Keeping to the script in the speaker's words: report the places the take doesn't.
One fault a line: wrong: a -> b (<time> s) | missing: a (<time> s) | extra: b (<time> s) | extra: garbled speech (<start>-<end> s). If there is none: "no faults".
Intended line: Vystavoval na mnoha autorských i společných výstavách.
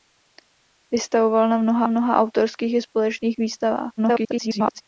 extra: mnoha (1.9 s)
extra: garbled speech (4.0-4.8 s)